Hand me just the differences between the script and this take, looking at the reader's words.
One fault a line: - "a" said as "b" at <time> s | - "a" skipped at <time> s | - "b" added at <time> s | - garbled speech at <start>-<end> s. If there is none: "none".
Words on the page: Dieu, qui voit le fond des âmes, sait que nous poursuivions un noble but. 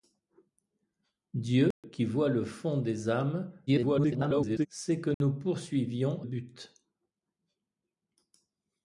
- garbled speech at 3.7-4.7 s
- "un noble" skipped at 6.2 s